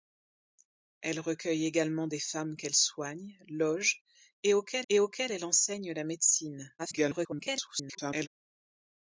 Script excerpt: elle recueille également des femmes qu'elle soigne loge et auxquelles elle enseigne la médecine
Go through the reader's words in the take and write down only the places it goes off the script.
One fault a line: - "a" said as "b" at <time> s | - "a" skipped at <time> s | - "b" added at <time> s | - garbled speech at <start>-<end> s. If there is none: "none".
- "et auxquelles" added at 4.9 s
- garbled speech at 6.8-8.3 s